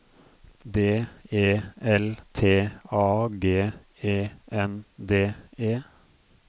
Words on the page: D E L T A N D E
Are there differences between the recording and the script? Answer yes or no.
yes